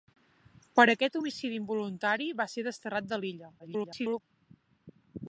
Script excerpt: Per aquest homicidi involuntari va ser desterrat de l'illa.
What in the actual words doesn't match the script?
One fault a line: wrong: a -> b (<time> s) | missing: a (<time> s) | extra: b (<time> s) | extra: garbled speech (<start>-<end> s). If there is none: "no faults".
extra: garbled speech (3.6-4.2 s)